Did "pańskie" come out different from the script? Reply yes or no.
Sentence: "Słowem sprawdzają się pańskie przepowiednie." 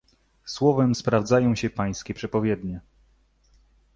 no